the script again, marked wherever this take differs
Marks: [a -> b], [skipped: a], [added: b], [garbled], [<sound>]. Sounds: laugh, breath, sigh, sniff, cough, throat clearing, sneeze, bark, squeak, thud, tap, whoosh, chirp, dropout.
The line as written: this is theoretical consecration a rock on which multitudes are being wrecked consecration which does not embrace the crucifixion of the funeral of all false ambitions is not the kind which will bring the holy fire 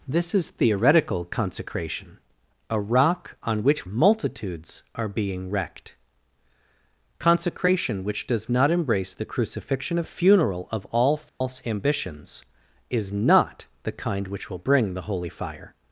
this is theoretical consecration a rock on which multitudes are being wrecked consecration which does not embrace the crucifixion of the funeral of all false [dropout] ambitions is not the kind which will bring the holy fire